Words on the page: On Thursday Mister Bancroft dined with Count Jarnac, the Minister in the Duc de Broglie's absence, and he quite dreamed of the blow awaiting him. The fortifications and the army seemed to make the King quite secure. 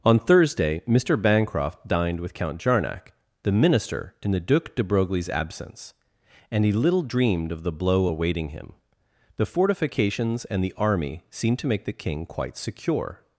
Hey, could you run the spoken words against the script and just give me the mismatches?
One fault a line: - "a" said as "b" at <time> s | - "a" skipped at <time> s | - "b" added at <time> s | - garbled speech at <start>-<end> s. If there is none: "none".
- "quite" said as "little" at 6.7 s